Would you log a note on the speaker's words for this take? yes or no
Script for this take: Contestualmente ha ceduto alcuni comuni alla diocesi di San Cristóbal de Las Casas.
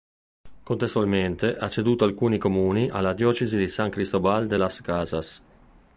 no